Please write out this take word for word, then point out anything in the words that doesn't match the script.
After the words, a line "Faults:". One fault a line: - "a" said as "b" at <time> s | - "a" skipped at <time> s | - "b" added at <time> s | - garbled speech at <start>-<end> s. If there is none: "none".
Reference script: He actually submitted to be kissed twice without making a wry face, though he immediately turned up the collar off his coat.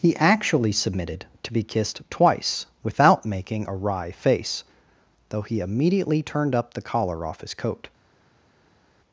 He actually submitted to be kissed twice without making a wry face, though he immediately turned up the collar off his coat.
Faults:
none